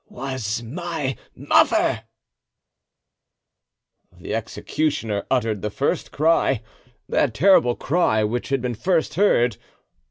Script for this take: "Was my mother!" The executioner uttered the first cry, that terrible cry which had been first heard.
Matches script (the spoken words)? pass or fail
pass